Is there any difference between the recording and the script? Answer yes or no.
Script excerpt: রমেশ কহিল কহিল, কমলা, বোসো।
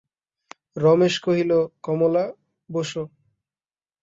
yes